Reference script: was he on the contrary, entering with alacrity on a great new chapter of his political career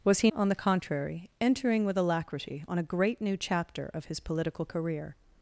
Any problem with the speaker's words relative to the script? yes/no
no